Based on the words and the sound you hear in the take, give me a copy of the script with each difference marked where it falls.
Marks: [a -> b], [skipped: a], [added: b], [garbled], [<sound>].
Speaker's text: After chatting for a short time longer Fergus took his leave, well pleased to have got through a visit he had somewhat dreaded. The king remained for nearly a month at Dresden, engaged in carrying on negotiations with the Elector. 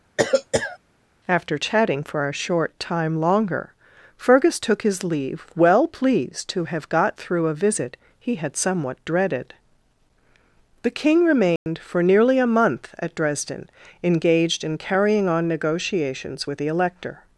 [cough] After chatting for a short time longer Fergus took his leave, well pleased to have got through a visit he had somewhat dreaded. The king remained [dropout] for nearly a month at Dresden, engaged in carrying on negotiations with the Elector.